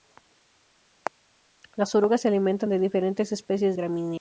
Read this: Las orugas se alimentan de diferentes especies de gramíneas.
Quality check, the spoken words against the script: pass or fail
fail